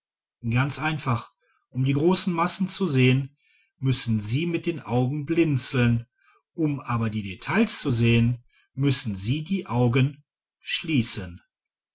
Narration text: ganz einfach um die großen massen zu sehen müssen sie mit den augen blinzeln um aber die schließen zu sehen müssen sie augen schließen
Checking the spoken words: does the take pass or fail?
fail